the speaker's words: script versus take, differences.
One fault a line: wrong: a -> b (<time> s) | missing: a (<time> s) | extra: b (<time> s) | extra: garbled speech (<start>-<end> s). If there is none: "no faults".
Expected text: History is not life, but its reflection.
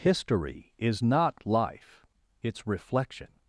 missing: but (2.0 s)